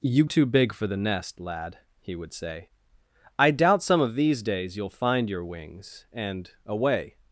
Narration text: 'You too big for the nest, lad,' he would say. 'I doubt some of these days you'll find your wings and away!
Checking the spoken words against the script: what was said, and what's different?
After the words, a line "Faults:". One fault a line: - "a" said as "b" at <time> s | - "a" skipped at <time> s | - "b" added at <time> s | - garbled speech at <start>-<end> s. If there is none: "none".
'You too big for the nest, lad,' he would say. 'I doubt some of these days you'll find your wings and away!
Faults:
none